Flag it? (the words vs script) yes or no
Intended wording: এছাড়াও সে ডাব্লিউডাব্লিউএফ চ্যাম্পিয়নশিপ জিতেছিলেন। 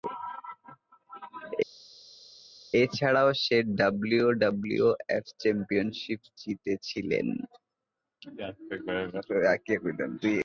no